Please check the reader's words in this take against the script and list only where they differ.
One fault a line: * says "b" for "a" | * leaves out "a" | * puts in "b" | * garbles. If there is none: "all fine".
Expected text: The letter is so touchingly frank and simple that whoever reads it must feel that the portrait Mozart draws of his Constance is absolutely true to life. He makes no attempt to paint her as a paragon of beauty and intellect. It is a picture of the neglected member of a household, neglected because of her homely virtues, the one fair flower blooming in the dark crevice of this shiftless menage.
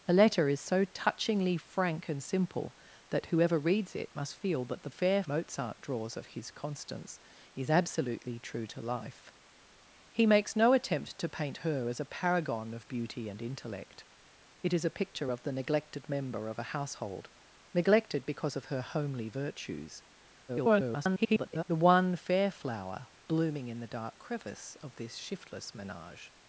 * says "fair" for "portrait"
* garbles